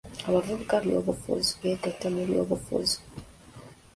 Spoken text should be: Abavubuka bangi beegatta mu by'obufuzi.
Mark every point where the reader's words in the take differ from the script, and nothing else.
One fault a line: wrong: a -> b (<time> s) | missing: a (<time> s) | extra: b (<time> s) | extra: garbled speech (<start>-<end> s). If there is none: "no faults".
wrong: bangi -> by'obufuzi (0.8 s)